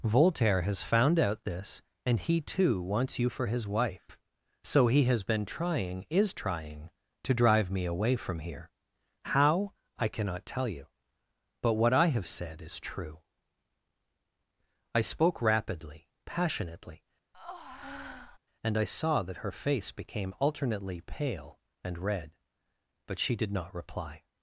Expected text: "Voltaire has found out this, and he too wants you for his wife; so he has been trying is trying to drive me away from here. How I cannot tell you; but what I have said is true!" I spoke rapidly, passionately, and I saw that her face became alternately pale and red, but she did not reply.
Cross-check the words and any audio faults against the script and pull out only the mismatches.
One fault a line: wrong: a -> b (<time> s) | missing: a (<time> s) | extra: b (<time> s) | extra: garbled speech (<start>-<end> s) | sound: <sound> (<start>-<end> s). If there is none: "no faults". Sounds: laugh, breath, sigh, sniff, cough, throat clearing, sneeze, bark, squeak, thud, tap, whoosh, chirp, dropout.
sound: breath (17.3-18.4 s)